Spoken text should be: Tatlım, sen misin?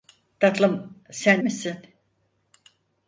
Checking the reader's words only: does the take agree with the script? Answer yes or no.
yes